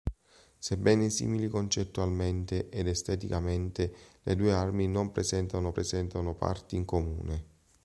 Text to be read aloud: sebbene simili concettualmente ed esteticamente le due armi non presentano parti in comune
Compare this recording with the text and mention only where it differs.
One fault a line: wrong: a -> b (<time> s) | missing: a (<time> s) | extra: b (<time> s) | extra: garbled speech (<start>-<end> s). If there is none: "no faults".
extra: presentano (5.7 s)